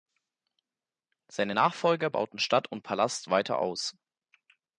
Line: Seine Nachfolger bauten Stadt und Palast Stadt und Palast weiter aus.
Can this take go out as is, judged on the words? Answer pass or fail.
fail